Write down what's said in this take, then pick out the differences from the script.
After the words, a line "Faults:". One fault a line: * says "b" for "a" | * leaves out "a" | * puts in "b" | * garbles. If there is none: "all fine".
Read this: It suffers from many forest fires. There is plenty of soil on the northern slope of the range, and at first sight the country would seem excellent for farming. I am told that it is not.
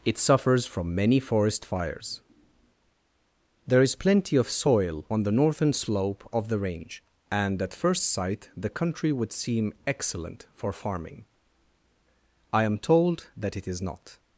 It suffers from many forest fires. There is plenty of soil on the northern slope of the range, and at first sight the country would seem excellent for farming. I am told that it is not.
Faults:
all fine